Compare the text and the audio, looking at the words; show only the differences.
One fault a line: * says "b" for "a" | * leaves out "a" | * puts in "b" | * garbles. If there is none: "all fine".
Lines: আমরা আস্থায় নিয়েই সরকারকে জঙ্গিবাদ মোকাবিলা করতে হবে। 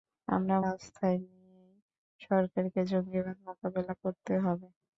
all fine